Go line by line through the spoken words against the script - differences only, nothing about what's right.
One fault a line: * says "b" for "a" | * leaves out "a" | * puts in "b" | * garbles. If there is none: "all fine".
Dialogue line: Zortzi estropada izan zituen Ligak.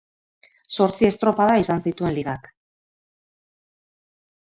all fine